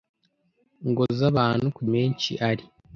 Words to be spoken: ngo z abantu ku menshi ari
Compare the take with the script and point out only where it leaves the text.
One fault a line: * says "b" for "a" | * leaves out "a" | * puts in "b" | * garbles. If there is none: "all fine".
all fine